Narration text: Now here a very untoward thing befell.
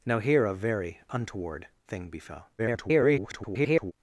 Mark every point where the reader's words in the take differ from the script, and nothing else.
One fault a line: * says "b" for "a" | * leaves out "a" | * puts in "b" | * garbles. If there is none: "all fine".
* garbles